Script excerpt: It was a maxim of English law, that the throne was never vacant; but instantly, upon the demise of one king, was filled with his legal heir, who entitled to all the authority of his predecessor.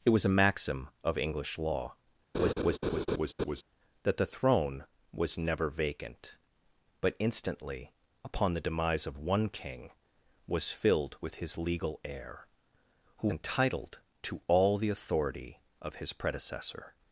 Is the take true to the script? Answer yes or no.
yes